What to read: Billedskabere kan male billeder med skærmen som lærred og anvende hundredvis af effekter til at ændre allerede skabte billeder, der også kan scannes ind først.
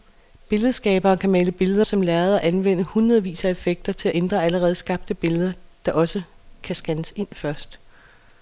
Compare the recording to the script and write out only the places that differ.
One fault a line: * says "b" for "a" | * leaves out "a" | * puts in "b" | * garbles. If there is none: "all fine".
* leaves out "med skærmen"